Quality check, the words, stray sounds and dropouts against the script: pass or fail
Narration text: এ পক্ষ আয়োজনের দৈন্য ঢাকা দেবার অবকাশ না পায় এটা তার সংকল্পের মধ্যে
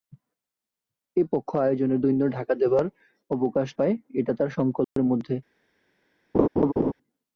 fail